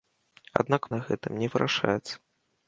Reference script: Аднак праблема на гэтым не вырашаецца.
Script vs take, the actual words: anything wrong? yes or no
yes